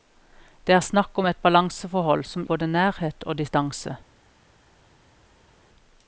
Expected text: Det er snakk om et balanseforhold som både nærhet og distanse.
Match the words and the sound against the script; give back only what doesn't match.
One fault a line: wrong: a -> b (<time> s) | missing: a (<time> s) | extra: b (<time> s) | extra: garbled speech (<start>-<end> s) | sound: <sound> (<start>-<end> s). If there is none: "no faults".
no faults